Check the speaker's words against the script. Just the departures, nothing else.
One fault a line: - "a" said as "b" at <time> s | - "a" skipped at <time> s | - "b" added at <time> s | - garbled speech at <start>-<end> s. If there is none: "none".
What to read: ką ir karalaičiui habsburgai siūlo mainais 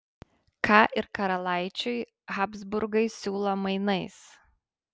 none